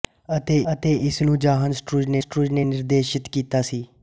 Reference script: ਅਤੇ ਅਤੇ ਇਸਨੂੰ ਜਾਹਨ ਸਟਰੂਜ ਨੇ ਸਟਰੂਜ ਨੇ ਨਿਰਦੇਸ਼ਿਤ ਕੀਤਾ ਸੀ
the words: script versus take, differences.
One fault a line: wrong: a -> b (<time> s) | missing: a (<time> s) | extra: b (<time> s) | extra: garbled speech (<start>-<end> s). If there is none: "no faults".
no faults